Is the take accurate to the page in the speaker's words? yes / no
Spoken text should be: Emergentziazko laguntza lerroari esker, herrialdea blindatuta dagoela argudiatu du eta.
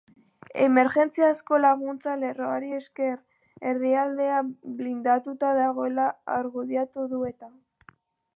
yes